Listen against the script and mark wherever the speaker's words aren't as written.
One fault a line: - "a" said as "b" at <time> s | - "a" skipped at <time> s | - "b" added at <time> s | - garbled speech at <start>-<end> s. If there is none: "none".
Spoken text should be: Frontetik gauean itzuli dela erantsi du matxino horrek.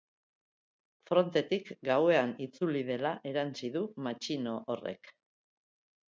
none